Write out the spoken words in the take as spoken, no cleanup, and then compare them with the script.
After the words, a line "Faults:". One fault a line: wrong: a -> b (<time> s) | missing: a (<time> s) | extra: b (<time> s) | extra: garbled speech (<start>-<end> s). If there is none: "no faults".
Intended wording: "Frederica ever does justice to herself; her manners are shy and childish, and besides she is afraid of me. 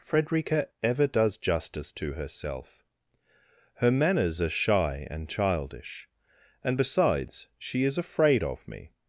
"Frederica ever does justice to herself; her manners are shy and childish, and besides she is afraid of me.
Faults:
no faults